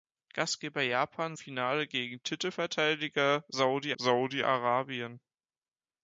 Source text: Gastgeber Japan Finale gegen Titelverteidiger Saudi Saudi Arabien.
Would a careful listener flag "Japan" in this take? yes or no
no